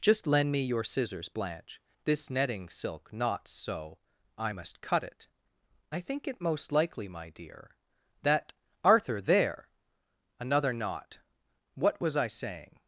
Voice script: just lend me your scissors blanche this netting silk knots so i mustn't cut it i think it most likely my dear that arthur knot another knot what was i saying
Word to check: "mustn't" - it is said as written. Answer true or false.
false